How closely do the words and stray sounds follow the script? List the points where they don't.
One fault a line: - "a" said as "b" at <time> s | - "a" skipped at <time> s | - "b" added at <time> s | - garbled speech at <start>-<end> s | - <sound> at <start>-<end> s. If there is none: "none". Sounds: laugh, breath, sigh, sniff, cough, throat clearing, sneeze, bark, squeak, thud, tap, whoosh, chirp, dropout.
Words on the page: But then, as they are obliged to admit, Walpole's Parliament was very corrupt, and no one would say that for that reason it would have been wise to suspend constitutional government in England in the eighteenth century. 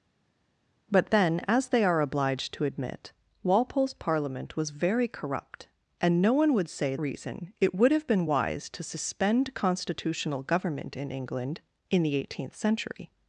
- "that for that" skipped at 6.9 s